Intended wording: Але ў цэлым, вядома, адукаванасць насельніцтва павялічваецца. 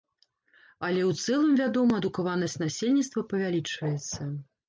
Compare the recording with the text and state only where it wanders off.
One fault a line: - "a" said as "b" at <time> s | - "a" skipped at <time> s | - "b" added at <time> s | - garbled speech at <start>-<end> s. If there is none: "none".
none